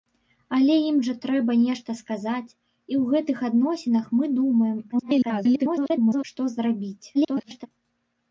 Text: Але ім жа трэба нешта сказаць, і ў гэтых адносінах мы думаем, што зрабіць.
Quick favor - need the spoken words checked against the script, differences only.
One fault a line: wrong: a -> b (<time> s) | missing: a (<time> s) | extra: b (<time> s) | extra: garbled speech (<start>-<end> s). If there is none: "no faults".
extra: garbled speech (4.9-6.2 s)
extra: garbled speech (7.1-7.7 s)